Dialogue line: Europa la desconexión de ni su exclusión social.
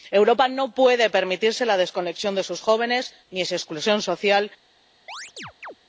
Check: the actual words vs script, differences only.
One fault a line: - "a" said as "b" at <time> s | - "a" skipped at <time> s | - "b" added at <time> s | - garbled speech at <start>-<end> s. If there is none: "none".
- "no puede permitirse" added at 0.5 s
- "sus jóvenes" added at 2.4 s